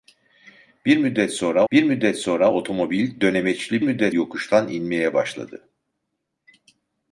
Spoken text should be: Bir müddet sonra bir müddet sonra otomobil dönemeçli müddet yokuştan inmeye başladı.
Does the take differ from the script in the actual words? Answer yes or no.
no